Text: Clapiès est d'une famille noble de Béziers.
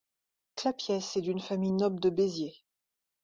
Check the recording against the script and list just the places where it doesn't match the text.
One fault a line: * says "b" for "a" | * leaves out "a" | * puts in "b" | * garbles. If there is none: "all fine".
all fine